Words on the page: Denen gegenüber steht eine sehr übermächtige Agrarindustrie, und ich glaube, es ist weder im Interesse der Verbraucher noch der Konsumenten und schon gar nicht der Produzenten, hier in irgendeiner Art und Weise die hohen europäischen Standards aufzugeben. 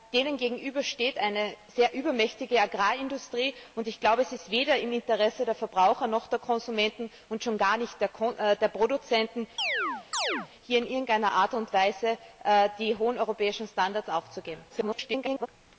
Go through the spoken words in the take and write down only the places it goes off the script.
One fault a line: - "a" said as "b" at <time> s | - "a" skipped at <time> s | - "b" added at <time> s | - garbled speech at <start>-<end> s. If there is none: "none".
- garbled speech at 14.7-15.5 s